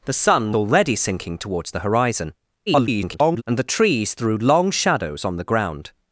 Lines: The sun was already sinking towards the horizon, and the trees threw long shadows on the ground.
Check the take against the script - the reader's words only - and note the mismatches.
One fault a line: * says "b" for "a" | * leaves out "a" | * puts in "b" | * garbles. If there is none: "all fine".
* leaves out "was"
* garbles